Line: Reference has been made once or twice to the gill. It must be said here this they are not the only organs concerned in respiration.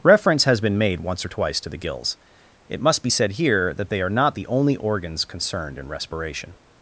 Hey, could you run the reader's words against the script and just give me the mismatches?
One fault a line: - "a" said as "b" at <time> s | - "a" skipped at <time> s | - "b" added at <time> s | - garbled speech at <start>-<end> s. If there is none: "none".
- "gill" said as "gills" at 1.8 s
- "this" said as "that" at 3.7 s